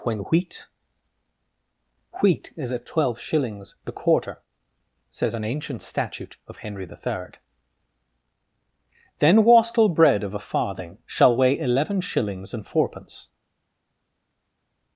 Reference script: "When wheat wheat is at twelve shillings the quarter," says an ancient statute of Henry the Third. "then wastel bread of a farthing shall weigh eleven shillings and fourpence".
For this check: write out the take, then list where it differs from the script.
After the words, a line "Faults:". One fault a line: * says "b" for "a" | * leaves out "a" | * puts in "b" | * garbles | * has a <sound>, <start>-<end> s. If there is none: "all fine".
"When wheat wheat is at twelve shillings the quarter," says an ancient statute of Henry the Third. "then wastel bread of a farthing shall weigh eleven shillings and fourpence".
Faults:
all fine